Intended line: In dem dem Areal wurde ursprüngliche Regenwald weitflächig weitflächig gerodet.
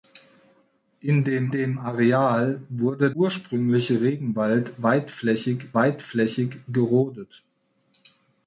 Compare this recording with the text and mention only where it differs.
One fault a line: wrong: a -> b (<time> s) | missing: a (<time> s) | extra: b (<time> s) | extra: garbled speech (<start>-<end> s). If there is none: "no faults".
no faults